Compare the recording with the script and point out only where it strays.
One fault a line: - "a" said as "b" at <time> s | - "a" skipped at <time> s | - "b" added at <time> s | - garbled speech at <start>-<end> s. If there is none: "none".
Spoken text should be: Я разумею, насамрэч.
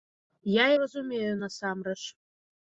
none